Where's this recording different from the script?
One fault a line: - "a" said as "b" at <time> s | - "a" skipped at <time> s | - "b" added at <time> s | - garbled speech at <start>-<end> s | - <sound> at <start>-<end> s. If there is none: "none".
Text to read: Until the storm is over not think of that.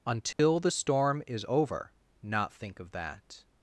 - dropout at 0.3-0.4 s